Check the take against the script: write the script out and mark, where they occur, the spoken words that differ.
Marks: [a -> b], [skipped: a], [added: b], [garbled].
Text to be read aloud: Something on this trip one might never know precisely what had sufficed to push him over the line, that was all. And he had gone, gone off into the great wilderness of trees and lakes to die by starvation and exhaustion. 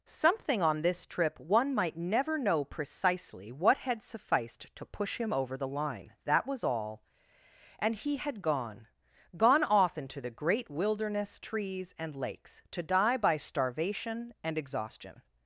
Something on this trip one might never know precisely what had sufficed to push him over the line, that was all. And he had gone, gone off into the great wilderness [skipped: of] trees and lakes to die by starvation and exhaustion.